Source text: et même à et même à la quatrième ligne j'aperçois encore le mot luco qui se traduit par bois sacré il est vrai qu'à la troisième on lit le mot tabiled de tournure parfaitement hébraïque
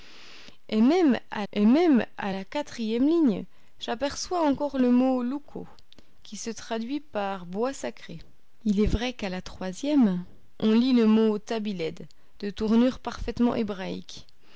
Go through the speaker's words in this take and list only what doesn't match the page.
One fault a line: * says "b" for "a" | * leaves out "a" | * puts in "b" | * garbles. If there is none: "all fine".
all fine